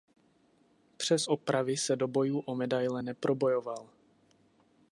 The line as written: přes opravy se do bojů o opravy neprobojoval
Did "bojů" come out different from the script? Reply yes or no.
no